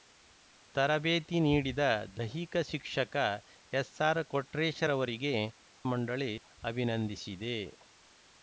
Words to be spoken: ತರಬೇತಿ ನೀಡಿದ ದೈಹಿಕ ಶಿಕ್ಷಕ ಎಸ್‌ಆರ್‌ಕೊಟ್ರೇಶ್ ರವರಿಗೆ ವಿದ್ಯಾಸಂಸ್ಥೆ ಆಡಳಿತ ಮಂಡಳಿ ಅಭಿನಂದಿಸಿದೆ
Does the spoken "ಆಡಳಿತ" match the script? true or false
false